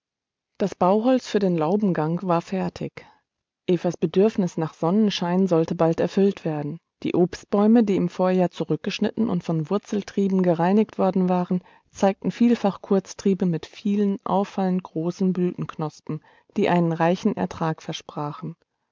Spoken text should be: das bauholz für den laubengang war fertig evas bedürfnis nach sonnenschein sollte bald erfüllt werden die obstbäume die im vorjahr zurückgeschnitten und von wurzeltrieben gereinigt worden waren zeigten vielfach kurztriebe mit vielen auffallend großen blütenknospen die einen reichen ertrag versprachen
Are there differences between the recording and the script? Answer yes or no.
no